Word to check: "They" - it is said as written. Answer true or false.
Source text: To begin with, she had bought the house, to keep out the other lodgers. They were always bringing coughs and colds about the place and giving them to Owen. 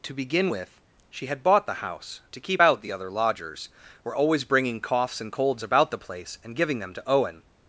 false